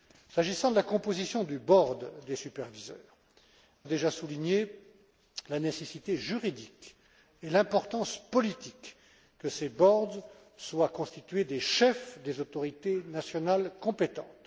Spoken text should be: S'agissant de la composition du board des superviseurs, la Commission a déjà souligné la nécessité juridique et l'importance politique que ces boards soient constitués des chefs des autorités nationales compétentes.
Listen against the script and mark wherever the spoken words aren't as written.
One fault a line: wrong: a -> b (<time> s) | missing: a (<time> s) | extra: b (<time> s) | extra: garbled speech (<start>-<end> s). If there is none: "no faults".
missing: la Commission (3.0 s)